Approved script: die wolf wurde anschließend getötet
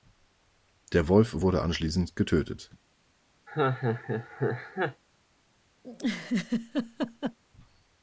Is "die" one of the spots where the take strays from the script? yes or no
yes